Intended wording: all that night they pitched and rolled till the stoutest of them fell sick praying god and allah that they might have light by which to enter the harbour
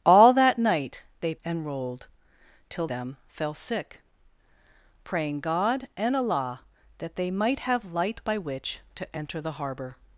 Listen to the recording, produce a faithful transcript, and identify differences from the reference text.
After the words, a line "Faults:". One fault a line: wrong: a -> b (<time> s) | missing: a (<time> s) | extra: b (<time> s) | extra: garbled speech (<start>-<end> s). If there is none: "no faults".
all that night they and rolled till them fell sick praying god and allah that they might have light by which to enter the harbour
Faults:
missing: pitched (1.4 s)
missing: the stoutest of (2.9 s)